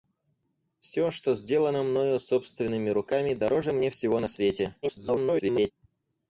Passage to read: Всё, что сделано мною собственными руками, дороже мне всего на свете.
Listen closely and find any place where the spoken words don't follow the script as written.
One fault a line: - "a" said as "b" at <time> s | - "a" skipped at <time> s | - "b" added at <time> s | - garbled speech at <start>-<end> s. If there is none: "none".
- garbled speech at 4.8-5.7 s